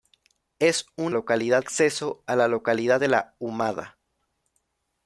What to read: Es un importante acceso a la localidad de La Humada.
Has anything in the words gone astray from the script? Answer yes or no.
yes